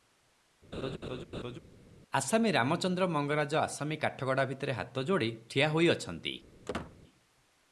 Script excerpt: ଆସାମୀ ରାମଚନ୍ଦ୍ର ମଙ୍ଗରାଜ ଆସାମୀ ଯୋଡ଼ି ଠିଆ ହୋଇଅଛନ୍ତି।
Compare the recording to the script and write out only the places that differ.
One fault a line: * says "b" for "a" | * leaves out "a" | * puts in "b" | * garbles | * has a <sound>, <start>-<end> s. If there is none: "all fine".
* has a laugh, 0.7-1.6 s
* puts in "କାଠଗଡ଼ା ଭିତରେ ହାତ"
* has a squeak, 6.7-7.0 s